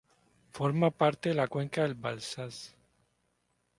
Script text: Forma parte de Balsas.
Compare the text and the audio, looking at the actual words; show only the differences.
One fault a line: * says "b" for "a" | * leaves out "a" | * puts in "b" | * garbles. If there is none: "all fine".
* puts in "la cuenca del"